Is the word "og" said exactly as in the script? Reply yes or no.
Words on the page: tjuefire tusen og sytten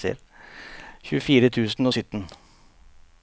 yes